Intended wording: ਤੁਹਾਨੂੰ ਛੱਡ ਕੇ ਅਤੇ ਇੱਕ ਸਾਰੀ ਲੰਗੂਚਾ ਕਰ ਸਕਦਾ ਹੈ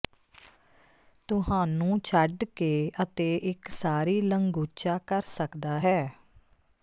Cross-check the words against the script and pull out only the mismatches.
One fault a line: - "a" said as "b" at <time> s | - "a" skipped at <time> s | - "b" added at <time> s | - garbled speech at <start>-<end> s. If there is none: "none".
none